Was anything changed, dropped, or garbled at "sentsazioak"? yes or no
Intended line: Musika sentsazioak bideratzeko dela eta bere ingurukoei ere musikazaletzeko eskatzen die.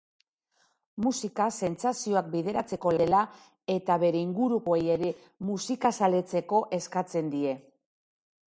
no